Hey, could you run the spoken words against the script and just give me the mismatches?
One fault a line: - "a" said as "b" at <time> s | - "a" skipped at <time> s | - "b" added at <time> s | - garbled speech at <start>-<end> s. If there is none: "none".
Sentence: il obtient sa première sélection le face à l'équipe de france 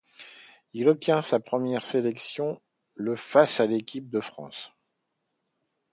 none